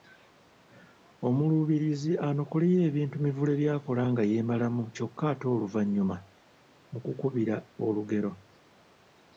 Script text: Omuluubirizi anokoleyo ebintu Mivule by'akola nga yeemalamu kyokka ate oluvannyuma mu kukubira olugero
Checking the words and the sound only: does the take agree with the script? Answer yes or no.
yes